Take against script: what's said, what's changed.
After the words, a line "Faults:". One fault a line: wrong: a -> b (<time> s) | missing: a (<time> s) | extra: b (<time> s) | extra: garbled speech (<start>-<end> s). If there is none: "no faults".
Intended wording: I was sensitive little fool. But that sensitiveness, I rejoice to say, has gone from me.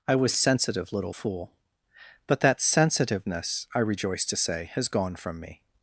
I was sensitive little fool. But that sensitiveness, I rejoice to say, has gone from me.
Faults:
no faults